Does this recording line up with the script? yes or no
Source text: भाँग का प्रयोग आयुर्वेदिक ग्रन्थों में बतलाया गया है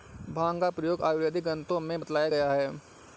yes